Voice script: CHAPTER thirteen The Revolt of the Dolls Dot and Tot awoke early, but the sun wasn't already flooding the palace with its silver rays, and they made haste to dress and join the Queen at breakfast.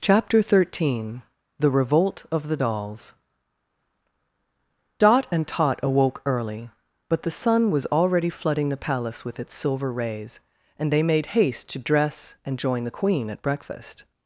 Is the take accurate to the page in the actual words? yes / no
no